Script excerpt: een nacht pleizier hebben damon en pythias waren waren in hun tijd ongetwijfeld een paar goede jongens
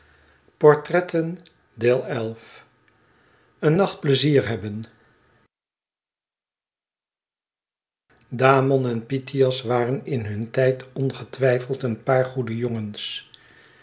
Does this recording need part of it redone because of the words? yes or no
yes